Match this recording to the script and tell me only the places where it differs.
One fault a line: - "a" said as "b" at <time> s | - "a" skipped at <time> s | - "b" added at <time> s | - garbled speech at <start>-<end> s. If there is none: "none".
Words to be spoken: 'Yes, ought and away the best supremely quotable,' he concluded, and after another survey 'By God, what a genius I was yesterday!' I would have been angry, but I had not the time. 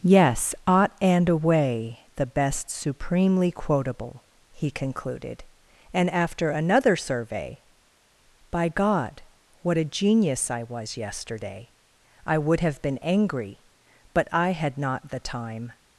none